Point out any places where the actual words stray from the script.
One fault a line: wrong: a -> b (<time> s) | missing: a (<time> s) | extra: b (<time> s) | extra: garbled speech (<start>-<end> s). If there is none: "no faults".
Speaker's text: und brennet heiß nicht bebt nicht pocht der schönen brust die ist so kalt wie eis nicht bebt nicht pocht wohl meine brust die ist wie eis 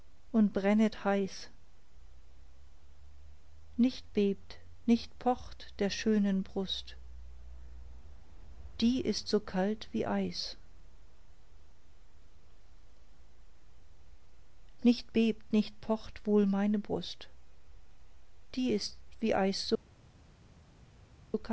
no faults